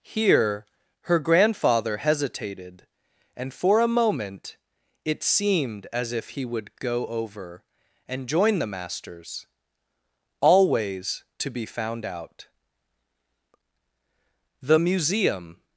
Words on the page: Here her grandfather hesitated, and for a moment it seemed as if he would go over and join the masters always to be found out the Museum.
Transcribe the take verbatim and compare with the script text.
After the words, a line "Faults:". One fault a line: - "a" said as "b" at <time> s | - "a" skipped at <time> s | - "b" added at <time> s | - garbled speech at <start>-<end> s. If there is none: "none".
Here her grandfather hesitated, and for a moment it seemed as if he would go over and join the masters always to be found out the Museum.
Faults:
none